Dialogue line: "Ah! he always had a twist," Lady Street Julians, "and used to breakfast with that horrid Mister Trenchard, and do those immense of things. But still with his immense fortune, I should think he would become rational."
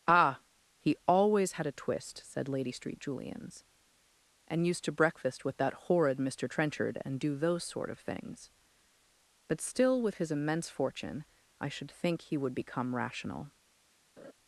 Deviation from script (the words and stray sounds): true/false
true